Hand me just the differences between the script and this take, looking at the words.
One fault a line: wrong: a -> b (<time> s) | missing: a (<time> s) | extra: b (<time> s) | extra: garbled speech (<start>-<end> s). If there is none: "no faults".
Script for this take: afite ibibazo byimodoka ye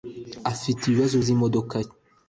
no faults